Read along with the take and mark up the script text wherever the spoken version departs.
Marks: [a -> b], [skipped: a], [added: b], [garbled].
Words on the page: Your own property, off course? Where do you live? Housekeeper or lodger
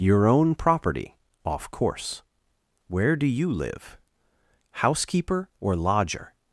Your own property, off course? Where do you live? Housekeeper or lodger